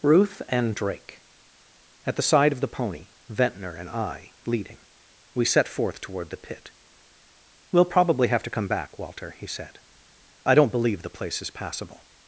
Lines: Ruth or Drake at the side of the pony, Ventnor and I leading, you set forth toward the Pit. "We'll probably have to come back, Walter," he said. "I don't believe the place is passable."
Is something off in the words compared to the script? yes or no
yes